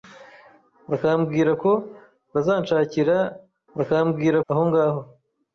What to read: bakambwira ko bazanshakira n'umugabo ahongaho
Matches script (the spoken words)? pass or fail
fail